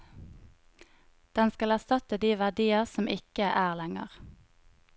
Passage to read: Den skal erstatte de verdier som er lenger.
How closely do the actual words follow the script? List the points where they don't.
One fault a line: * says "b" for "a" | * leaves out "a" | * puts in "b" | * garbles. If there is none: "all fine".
* puts in "ikke"